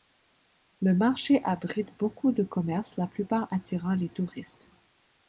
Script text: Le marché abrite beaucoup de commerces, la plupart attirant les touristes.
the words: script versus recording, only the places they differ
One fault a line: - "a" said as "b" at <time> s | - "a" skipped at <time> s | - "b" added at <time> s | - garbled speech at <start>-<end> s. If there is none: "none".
none